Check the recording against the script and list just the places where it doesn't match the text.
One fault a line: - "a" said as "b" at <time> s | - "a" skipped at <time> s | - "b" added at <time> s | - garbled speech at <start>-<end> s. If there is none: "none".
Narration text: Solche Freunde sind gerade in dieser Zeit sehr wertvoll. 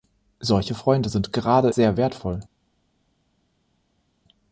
- "in dieser Zeit" skipped at 1.7 s